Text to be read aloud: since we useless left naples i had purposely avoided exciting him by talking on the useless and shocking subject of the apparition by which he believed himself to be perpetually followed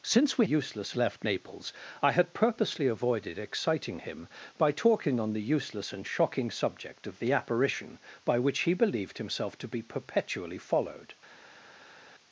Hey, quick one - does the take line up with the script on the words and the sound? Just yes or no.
yes